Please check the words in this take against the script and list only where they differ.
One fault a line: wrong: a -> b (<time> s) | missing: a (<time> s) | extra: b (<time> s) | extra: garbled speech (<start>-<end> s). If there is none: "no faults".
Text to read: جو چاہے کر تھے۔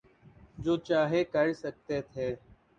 extra: سکتے (1.6 s)